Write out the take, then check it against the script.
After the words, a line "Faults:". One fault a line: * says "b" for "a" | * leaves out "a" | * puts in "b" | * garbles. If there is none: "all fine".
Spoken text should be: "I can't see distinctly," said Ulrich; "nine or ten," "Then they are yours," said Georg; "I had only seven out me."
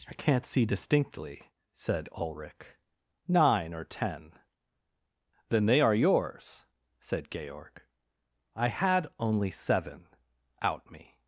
"I can't see distinctly," said Ulrich; "nine or ten," "Then they are yours," said Georg; "I had only seven out me."
Faults:
all fine